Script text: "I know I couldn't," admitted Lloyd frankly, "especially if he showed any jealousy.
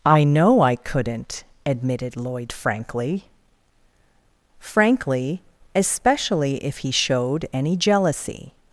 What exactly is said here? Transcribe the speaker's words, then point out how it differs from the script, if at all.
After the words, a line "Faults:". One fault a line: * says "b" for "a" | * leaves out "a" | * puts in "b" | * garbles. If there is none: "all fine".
"I know I couldn't," admitted Lloyd frankly frankly, "especially if he showed any jealousy.
Faults:
* puts in "frankly"